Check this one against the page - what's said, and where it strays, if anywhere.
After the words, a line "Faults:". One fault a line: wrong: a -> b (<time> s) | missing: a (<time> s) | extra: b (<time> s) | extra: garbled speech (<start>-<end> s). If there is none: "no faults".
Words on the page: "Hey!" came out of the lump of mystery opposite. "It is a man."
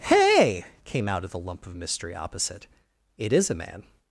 "Hey!" came out of the lump of mystery opposite. "It is a man."
Faults:
no faults